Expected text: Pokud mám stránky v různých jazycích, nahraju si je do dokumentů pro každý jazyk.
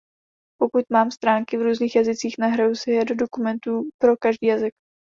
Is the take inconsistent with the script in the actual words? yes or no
no